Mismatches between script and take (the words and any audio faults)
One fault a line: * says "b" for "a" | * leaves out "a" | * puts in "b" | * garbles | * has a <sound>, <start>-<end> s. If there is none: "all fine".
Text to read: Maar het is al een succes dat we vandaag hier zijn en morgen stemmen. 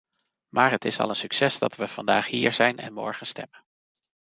all fine